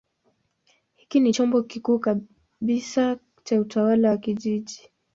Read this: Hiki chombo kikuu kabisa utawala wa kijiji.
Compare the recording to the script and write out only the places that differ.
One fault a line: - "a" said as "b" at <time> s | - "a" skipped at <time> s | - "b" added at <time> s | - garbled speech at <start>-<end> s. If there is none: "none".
- "ni" added at 1.2 s
- "cha" added at 3.4 s